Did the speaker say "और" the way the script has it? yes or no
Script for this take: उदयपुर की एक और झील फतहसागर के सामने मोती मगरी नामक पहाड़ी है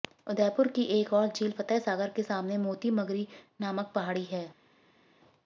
yes